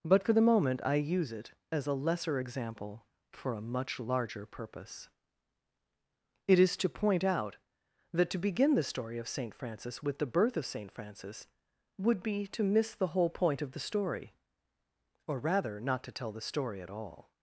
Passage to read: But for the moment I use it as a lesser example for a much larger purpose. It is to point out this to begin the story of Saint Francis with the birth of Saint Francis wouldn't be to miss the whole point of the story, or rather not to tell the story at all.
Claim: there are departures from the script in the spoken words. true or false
true